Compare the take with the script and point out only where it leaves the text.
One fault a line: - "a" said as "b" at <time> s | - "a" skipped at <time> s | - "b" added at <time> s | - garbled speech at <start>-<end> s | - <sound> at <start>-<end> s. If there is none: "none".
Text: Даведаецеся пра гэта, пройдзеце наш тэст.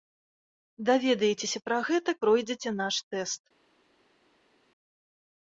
none